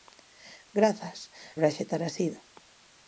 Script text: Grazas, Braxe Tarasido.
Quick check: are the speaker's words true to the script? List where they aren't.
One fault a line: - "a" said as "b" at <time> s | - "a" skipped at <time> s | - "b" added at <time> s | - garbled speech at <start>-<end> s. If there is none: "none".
none